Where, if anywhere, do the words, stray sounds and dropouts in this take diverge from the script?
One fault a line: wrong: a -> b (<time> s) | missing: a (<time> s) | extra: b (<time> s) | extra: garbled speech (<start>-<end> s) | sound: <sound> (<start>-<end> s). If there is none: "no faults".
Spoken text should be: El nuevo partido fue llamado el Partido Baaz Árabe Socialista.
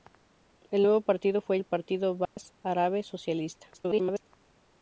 missing: llamado (1.6 s)
sound: dropout (2.3-2.4 s)
extra: garbled speech (3.7-4.3 s)